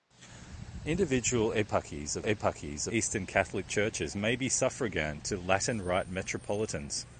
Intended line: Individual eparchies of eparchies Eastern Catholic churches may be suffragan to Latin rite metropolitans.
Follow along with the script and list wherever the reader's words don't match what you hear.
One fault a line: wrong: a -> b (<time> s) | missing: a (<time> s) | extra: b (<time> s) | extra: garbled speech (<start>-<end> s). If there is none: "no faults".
no faults